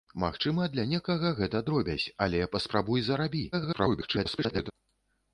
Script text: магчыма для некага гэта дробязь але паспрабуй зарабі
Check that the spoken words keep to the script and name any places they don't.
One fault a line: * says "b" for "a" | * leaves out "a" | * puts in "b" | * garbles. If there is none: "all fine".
* garbles